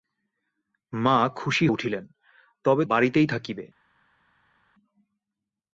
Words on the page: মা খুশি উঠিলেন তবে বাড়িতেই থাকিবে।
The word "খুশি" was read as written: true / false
true